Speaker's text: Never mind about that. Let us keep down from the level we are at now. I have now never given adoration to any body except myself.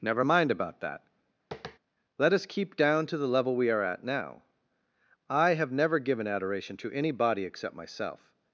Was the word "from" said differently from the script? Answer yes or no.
yes